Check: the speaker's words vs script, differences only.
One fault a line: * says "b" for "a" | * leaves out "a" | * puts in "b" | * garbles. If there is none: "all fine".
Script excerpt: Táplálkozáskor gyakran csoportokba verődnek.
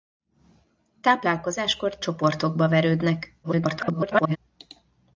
* leaves out "gyakran"
* garbles